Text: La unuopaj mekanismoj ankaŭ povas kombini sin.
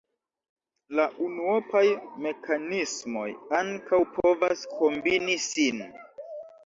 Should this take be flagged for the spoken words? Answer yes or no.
no